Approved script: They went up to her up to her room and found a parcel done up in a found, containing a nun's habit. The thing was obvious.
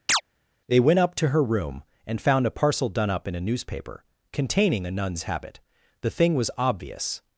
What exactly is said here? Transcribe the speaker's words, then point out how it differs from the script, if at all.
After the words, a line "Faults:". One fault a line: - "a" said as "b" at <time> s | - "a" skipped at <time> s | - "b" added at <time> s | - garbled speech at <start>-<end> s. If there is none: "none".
They went up to her room and found a parcel done up in a newspaper, containing a nun's habit. The thing was obvious.
Faults:
- "up to her" skipped at 1.4 s
- "found" said as "newspaper" at 3.4 s